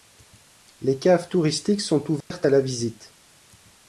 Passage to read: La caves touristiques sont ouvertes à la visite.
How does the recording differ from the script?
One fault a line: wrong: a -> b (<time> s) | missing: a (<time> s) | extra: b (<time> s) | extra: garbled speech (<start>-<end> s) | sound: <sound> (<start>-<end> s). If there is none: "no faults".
wrong: La -> Les (0.8 s)
sound: dropout (2.2-2.3 s)